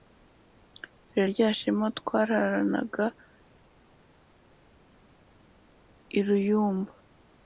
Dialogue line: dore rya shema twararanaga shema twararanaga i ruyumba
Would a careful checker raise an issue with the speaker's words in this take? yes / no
yes